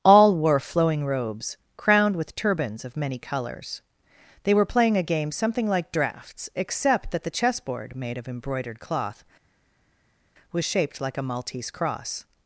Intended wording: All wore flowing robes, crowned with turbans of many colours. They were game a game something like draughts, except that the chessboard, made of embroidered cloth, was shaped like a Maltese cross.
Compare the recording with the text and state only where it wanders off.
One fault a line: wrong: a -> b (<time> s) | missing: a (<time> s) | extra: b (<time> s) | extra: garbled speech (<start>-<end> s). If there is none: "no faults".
wrong: game -> playing (4.7 s)